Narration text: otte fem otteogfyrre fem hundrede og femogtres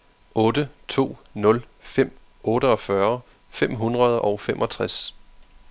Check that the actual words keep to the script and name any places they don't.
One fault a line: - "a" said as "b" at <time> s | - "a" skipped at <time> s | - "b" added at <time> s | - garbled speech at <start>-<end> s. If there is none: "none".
- "to nul" added at 0.9 s